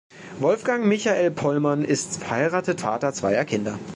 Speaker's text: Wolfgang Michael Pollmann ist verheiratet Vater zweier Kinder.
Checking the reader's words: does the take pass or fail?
pass